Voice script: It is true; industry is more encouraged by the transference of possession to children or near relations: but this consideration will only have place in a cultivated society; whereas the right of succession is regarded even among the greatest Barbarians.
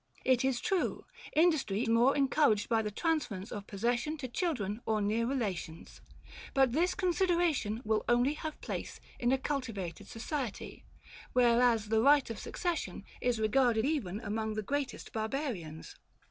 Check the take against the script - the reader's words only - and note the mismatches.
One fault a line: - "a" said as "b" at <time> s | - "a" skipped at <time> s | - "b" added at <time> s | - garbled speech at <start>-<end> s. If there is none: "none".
- "is" skipped at 1.8 s